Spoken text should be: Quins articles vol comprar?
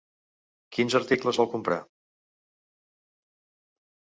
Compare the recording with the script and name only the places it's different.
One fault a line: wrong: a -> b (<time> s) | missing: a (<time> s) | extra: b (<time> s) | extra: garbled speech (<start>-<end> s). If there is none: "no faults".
no faults